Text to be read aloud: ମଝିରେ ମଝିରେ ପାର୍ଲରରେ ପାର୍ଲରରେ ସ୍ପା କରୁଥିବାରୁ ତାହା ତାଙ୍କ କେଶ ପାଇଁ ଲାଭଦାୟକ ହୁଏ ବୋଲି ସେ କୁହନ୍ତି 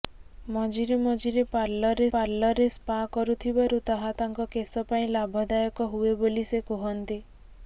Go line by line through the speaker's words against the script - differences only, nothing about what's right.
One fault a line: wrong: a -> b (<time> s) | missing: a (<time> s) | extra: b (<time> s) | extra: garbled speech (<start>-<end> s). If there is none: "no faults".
no faults